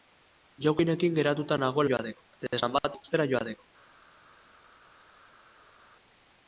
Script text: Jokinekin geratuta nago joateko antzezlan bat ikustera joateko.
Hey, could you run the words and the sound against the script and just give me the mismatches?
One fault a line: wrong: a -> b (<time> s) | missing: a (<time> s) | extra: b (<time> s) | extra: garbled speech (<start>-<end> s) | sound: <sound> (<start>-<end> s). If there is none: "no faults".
no faults